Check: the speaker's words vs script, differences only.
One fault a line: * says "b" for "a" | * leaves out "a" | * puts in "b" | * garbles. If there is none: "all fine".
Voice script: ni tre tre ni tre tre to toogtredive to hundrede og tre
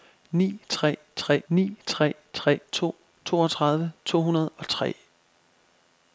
all fine